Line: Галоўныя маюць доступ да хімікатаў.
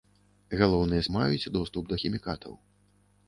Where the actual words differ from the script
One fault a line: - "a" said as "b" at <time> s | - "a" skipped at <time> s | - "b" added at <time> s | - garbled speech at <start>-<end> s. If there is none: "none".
none